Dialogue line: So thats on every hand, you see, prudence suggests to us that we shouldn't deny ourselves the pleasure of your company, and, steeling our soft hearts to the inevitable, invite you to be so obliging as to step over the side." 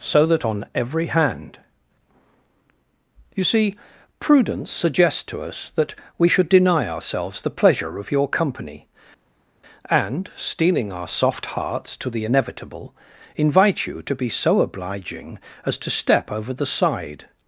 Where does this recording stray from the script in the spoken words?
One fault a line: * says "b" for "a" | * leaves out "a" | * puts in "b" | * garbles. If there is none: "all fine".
* says "that" for "thats"
* says "should" for "shouldn't"